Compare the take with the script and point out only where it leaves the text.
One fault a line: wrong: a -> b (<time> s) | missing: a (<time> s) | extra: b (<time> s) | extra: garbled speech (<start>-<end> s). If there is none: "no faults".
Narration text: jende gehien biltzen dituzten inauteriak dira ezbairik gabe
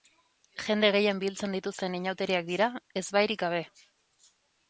no faults